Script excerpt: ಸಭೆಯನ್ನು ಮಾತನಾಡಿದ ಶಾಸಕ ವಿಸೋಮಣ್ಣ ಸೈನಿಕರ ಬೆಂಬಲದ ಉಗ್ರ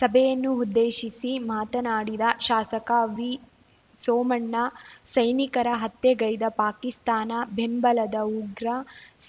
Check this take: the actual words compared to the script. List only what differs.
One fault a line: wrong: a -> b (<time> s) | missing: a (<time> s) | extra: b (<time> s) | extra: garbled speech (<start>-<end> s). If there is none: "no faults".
extra: ಉದ್ದೇಶಿಸಿ (0.6 s)
extra: ಹತ್ಯೆಗೈದ ಪಾಕಿಸ್ತಾನ (5.8 s)